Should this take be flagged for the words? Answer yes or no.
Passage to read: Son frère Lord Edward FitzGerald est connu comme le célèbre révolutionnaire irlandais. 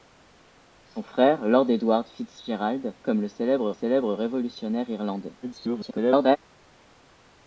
yes